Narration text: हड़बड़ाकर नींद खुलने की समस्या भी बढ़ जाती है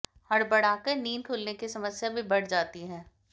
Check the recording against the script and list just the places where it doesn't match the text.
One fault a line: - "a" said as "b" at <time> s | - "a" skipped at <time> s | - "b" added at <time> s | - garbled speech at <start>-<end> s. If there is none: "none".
none